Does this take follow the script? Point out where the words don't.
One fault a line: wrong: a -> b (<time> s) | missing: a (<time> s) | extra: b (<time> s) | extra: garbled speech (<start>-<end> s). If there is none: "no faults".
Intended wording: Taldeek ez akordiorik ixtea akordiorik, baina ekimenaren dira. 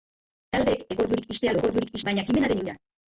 no faults